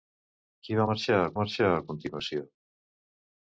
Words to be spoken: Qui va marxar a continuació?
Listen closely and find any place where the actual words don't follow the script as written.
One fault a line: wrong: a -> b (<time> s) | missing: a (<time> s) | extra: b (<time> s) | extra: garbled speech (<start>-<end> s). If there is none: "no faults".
extra: marxar a (1.4 s)